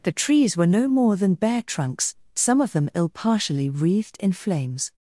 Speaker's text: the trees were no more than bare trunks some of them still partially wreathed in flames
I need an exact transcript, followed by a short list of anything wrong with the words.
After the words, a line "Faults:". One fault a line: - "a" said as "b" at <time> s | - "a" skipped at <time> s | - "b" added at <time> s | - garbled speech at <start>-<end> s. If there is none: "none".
the trees were no more than bare trunks some of them ill partially wreathed in flames
Faults:
- "still" said as "ill" at 3.0 s